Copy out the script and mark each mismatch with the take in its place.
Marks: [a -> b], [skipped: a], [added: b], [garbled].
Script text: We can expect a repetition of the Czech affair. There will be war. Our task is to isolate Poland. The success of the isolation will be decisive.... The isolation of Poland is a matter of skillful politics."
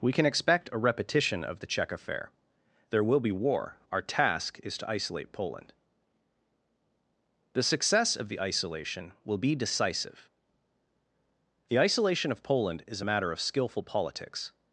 We can expect a repetition of the Czech affair. There will be war. Our task is to isolate Poland. The success of the isolation will be decisive.... The isolation of Poland is a matter of skillful politics."